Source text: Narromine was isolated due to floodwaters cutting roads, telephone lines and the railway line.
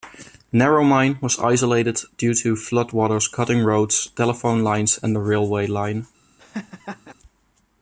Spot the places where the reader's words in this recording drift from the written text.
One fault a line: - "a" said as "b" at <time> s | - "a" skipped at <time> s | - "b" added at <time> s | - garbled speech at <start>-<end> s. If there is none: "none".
none